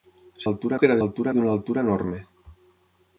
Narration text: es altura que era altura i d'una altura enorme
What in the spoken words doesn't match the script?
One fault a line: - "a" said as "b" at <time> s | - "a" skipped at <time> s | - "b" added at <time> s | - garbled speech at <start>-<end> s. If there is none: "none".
none